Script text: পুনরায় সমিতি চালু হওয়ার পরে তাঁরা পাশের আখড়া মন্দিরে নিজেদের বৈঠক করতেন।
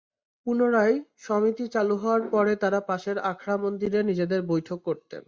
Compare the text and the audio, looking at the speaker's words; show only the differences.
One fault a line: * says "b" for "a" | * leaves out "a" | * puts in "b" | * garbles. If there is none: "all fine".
all fine